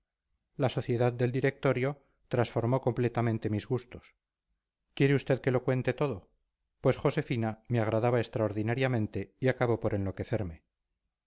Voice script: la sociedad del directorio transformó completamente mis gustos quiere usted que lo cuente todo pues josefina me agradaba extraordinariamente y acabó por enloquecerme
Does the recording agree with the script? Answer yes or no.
yes